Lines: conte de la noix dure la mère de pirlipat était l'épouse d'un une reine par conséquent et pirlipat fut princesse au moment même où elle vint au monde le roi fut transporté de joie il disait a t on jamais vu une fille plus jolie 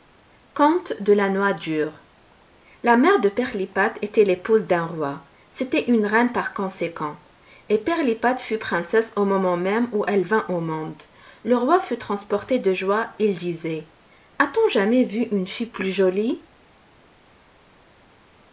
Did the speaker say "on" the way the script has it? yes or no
yes